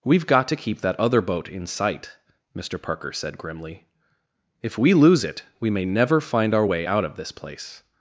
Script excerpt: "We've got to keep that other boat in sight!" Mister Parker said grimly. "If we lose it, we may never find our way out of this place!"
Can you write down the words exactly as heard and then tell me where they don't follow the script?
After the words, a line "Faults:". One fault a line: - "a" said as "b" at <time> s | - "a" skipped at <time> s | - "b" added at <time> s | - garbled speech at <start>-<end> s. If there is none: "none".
"We've got to keep that other boat in sight!" Mister Parker said grimly. "If we lose it, we may never find our way out of this place!"
Faults:
none